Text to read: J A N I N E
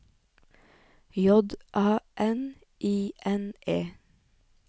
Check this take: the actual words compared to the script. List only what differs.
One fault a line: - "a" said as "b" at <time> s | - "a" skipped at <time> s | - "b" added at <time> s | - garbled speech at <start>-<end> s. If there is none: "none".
none